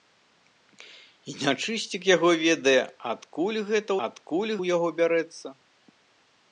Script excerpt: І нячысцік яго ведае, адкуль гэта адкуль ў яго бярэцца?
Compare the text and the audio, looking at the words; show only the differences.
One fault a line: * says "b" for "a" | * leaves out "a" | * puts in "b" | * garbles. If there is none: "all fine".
all fine